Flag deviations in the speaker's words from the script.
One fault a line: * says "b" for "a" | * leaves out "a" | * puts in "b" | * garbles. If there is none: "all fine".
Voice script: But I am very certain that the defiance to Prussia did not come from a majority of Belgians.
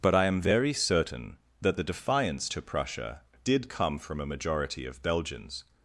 * leaves out "not"